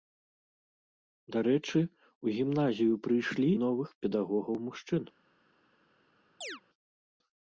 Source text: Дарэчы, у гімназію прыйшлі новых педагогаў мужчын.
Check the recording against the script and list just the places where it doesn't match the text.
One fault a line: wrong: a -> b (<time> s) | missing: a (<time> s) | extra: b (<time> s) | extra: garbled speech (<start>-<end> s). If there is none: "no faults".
no faults